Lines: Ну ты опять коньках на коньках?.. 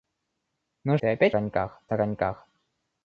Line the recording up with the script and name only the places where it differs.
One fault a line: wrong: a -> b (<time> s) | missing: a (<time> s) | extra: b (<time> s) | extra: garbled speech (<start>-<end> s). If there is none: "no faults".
no faults